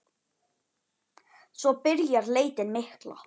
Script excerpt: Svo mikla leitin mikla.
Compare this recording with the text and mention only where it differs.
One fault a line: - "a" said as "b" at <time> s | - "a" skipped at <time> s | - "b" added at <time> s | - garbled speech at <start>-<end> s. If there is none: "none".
- "mikla" said as "byrjar" at 1.8 s